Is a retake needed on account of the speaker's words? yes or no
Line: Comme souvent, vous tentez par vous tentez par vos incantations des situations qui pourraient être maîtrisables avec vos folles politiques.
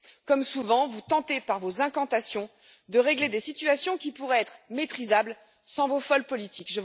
yes